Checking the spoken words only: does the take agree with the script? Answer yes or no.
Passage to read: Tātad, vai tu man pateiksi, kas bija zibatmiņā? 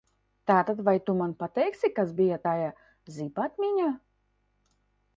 no